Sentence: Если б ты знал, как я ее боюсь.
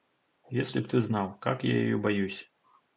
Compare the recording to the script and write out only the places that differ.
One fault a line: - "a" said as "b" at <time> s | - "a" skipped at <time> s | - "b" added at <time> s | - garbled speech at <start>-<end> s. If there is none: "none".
none